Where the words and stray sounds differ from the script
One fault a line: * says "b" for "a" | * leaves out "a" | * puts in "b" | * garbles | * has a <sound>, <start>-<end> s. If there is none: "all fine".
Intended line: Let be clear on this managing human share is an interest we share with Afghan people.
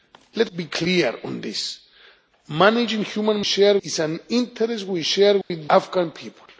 * has a dropout, 5.4-5.5 s